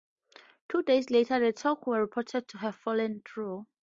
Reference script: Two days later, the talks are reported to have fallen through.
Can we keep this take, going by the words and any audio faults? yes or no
no